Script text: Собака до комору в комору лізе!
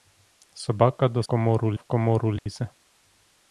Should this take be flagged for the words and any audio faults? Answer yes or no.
yes